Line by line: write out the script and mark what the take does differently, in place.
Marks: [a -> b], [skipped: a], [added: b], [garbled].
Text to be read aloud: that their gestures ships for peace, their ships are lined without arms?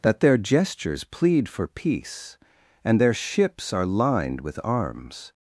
that their gestures [ships -> plead] for peace, [added: and] their ships are lined [without -> with] arms?